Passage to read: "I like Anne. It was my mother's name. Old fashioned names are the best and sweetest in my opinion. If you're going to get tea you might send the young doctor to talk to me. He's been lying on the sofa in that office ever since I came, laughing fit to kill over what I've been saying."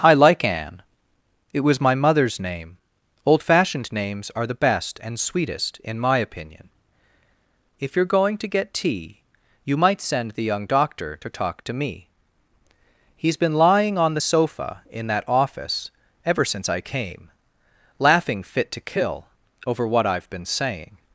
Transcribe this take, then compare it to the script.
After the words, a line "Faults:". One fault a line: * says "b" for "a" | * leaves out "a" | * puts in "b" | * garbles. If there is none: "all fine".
"I like Anne. It was my mother's name. Old fashioned names are the best and sweetest in my opinion. If you're going to get tea you might send the young doctor to talk to me. He's been lying on the sofa in that office ever since I came, laughing fit to kill over what I've been saying."
Faults:
all fine